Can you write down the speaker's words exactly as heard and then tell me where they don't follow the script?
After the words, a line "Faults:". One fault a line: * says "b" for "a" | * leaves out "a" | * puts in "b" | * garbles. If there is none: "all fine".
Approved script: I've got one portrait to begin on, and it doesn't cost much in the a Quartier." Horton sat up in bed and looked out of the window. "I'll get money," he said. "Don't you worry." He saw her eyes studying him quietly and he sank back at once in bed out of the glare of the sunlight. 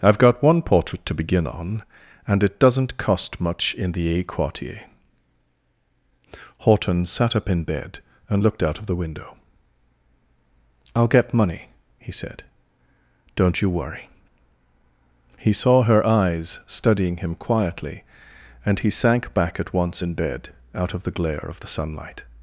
I've got one portrait to begin on, and it doesn't cost much in the a Quartier." Horton sat up in bed and looked out of the window. "I'll get money," he said. "Don't you worry." He saw her eyes studying him quietly and he sank back at once in bed out of the glare of the sunlight.
Faults:
all fine